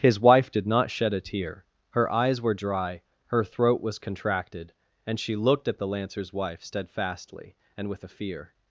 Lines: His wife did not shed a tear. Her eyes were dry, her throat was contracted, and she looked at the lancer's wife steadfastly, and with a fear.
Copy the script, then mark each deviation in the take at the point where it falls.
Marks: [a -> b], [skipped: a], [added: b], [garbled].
His wife did not shed a tear. Her eyes were dry, her throat was contracted, and she looked at the lancer's wife steadfastly, and with a fear.